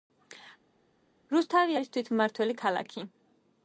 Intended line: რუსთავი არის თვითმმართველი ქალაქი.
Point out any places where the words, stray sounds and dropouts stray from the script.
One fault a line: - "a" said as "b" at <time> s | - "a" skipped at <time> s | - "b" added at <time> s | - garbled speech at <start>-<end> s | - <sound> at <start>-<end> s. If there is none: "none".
none